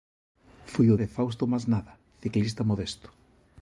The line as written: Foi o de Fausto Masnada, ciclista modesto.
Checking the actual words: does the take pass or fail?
pass